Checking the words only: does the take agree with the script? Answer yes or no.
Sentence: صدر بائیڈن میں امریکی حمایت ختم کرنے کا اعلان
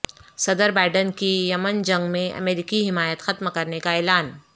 no